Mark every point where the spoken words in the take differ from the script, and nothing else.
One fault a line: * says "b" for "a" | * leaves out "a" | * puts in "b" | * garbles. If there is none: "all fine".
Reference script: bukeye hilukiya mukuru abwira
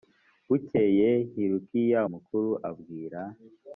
all fine